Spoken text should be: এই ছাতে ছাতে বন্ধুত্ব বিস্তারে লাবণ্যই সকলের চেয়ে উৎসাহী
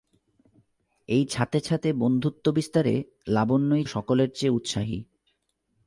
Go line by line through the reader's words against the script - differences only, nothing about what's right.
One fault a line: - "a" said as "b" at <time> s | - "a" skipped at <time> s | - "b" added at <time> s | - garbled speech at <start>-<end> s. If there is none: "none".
none